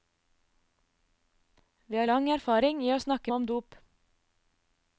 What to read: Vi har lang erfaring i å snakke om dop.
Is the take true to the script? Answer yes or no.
yes